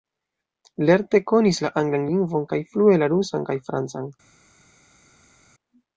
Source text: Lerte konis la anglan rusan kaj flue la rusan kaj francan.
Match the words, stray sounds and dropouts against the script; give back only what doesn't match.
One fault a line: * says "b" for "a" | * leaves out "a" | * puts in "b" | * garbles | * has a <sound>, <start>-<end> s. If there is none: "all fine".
* says "lingvon" for "rusan"